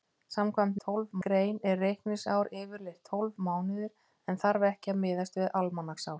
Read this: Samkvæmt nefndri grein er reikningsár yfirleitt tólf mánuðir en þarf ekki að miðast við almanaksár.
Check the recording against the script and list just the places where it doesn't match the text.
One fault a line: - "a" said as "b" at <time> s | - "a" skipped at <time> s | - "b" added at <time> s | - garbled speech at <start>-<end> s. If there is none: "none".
- "nefndri" said as "tólf" at 0.9 s